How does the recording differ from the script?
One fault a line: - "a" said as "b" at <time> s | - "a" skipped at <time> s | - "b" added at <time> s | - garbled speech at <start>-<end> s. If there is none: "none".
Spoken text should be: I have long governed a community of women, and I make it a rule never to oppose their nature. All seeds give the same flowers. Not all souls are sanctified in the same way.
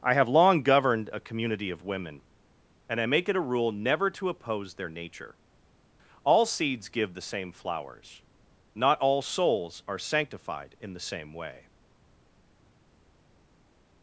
none